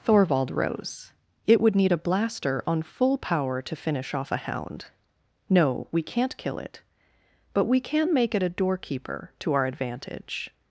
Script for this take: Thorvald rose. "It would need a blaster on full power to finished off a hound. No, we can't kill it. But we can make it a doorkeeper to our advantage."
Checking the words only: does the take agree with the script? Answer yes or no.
no